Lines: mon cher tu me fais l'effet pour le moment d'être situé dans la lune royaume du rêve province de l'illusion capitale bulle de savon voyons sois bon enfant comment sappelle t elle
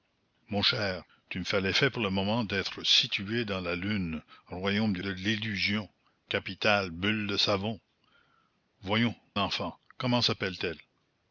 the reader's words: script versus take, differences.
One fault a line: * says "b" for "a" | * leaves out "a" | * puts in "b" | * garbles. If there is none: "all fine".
* leaves out "rêve province"
* leaves out "sois bon"